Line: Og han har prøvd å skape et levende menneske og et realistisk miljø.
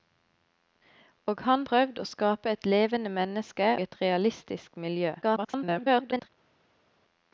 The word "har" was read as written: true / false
false